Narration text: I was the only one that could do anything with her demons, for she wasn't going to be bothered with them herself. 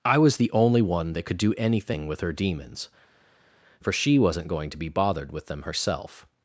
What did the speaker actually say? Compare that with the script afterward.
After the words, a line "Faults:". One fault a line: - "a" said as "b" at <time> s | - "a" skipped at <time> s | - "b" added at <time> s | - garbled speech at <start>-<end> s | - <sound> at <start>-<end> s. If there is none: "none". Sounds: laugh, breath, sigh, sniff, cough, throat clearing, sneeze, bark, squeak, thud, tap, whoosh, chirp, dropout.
I was the only one that could do anything with her demons, for she wasn't going to be bothered with them herself.
Faults:
none